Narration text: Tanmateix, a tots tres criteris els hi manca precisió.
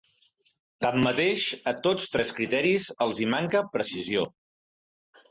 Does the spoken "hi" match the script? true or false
true